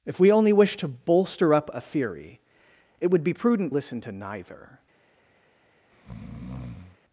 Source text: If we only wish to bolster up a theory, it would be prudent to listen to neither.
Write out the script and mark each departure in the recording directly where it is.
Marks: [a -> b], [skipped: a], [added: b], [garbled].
If we only wish to bolster up a theory, it would be prudent [skipped: to] listen to neither.